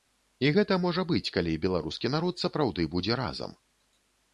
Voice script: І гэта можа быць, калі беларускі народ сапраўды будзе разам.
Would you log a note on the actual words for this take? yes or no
no